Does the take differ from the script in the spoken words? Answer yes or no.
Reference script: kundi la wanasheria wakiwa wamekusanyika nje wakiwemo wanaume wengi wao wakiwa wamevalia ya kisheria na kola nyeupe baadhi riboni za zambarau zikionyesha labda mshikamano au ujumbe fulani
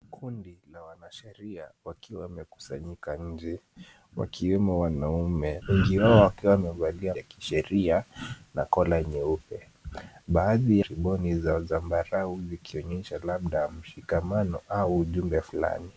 no